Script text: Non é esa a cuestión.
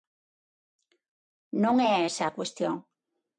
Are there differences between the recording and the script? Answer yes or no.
no